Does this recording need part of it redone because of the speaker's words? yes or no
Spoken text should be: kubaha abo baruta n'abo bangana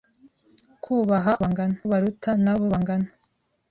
yes